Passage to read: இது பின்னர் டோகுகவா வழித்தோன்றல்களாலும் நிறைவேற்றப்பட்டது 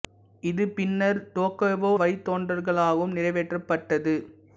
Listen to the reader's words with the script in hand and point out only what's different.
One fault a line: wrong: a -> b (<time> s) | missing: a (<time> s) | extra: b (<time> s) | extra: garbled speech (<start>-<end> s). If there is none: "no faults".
no faults